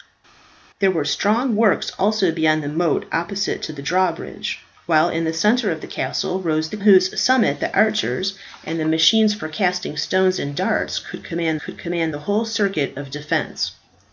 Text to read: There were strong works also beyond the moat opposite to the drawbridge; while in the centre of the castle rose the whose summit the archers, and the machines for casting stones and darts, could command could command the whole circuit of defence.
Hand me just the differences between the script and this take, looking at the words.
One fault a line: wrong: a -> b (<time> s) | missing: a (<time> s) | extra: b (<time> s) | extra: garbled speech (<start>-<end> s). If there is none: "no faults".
no faults